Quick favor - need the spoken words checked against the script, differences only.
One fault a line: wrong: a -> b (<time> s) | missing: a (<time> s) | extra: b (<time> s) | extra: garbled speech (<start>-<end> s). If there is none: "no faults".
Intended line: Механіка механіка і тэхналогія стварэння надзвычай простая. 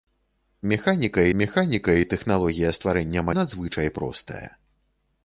no faults